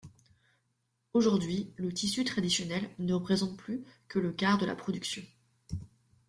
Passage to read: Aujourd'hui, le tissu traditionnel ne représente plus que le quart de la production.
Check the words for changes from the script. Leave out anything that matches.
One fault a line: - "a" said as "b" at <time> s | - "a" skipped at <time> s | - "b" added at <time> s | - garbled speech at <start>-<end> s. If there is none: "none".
none